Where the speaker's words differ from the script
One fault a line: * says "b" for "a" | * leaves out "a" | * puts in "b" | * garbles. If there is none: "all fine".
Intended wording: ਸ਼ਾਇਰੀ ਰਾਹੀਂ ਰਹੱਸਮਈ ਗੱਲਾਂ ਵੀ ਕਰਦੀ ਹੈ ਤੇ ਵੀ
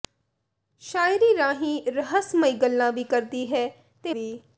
all fine